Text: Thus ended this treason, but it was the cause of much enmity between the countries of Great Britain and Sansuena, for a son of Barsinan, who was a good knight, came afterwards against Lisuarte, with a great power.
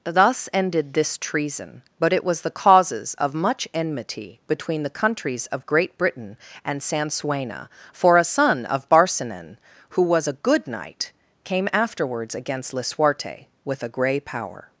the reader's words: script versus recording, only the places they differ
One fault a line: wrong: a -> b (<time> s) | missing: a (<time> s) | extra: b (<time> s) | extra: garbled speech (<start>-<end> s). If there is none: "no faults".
wrong: cause -> causes (2.5 s)
wrong: great -> grey (13.9 s)